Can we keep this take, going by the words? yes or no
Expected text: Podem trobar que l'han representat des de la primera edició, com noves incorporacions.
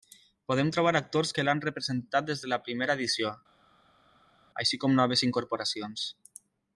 no